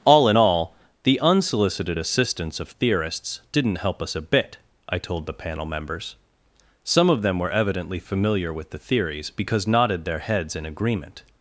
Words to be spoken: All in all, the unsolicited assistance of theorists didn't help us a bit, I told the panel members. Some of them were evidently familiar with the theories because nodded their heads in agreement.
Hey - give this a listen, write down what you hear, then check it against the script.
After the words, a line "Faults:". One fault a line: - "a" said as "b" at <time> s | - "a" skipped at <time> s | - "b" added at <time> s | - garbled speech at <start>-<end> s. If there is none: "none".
All in all, the unsolicited assistance of theorists didn't help us a bit, I told the panel members. Some of them were evidently familiar with the theories because nodded their heads in agreement.
Faults:
none